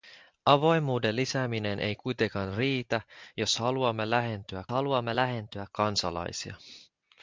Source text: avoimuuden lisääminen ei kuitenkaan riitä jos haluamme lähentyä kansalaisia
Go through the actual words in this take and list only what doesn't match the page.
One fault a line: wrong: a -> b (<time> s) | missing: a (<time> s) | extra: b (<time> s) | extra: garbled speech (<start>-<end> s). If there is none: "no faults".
extra: haluamme lähentyä (4.7 s)